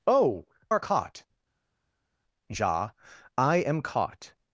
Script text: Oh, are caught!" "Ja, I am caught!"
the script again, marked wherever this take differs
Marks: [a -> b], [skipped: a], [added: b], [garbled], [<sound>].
Oh, are caught!" "Ja, I am caught!"